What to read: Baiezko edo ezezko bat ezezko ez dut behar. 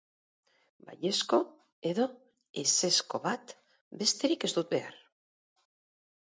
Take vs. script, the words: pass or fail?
fail